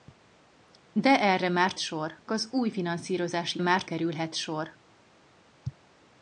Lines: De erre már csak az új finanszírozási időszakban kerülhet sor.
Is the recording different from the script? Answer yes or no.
yes